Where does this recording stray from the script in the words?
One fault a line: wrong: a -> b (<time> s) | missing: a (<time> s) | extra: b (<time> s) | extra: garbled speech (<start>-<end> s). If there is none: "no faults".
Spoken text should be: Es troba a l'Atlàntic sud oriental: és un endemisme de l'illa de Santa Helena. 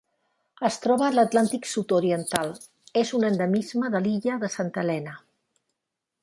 no faults